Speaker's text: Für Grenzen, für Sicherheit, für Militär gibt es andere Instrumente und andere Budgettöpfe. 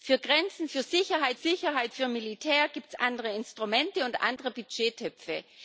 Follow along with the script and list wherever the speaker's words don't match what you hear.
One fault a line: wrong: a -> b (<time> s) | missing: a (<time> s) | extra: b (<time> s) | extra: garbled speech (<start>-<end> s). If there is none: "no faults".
extra: Sicherheit (1.3 s)